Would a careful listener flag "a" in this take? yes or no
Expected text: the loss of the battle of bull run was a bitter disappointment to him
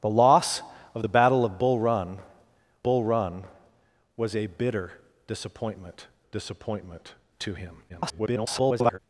no